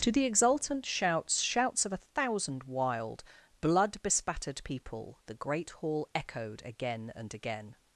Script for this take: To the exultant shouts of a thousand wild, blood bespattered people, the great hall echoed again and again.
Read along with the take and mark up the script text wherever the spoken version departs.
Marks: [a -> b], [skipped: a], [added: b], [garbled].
To the exultant shouts [added: shouts] of a thousand wild, blood bespattered people, the great hall echoed again and again.